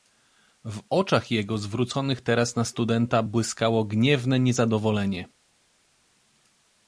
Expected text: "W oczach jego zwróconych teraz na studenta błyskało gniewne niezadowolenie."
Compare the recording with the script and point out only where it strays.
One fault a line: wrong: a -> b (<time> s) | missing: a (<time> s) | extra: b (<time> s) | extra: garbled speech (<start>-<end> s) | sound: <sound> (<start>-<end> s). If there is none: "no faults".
no faults